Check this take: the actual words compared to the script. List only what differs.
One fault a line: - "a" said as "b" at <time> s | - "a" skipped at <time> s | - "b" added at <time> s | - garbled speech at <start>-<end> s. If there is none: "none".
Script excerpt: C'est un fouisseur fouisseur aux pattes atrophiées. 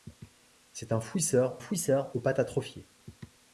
none